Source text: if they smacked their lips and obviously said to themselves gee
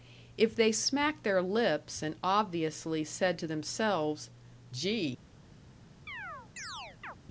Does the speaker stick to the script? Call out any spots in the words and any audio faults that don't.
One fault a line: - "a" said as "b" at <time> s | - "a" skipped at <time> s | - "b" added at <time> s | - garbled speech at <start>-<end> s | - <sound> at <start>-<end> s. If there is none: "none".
- chirp at 6.1-7.2 s